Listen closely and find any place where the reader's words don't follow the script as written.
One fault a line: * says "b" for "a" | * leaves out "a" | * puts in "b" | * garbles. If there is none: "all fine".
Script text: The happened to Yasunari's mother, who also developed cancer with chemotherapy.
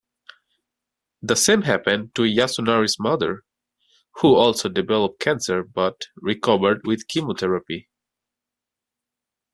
* puts in "same"
* puts in "but recovered"